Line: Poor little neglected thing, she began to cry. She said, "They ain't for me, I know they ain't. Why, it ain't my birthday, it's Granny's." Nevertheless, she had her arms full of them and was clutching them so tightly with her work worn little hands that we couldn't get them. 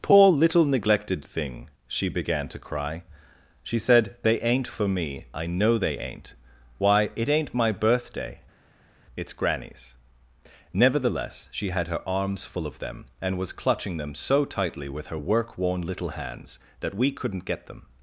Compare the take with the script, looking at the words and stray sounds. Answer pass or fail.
pass